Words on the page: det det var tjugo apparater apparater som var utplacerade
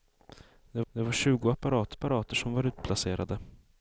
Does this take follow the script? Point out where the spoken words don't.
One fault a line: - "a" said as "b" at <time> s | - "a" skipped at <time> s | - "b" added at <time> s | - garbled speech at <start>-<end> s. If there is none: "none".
none